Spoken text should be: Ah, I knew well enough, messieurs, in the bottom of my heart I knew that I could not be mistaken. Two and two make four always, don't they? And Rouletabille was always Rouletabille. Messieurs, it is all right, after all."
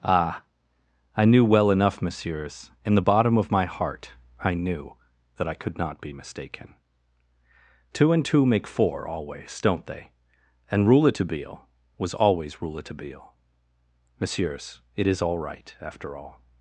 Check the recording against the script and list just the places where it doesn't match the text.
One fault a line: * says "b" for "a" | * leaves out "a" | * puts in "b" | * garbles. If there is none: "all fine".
all fine